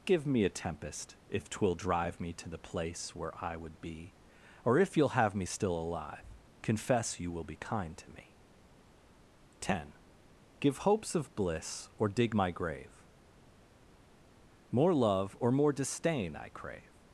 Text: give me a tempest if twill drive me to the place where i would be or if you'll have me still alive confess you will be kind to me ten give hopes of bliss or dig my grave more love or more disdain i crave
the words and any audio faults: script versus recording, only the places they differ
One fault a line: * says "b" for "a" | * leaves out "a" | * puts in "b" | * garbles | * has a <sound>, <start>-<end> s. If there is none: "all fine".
all fine